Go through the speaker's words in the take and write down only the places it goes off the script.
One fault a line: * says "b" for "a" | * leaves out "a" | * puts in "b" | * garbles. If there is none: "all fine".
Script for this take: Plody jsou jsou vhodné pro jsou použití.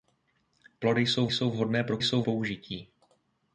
all fine